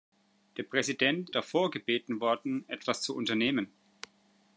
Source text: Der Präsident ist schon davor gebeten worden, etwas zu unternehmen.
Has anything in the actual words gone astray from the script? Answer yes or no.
yes